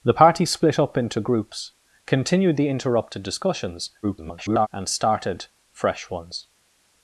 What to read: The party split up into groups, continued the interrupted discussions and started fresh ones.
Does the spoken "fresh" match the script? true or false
true